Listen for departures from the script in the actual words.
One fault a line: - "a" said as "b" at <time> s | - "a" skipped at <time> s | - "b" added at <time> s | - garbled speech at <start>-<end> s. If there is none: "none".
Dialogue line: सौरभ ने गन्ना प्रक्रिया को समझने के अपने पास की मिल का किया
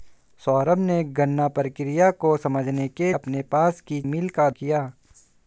none